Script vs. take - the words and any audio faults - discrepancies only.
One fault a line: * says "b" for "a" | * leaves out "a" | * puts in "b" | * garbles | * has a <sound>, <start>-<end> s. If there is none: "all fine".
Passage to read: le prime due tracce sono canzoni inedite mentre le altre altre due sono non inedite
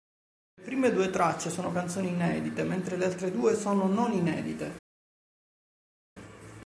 * leaves out "altre"